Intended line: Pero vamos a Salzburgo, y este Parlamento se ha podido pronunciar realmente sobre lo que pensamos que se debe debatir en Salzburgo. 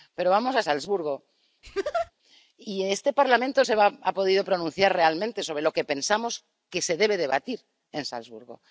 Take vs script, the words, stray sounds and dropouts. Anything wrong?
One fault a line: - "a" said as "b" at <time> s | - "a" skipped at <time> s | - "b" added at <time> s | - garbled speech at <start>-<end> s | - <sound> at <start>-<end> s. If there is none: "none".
- laugh at 1.6-2.1 s